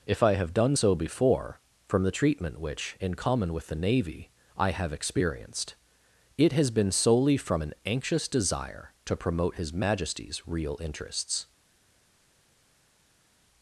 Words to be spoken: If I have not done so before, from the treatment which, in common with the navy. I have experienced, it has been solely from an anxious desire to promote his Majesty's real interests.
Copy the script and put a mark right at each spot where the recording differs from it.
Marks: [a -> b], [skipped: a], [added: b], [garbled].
If I have [skipped: not] done so before, from the treatment which, in common with the navy. I have experienced, it has been solely from an anxious desire to promote his Majesty's real interests.